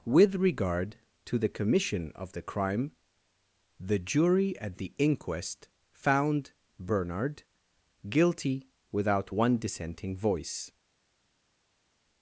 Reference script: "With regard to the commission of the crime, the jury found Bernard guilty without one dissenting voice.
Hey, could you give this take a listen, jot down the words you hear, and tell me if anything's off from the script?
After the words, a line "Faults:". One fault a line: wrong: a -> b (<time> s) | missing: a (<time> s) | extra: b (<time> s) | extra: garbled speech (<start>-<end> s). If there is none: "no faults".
"With regard to the commission of the crime, the jury at the inquest found Bernard guilty without one dissenting voice.
Faults:
extra: at the inquest (4.6 s)